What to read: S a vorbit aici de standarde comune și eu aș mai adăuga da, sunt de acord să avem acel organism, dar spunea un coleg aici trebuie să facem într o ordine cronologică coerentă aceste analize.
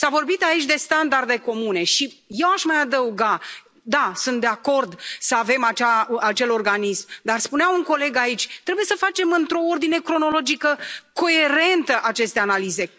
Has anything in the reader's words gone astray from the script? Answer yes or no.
no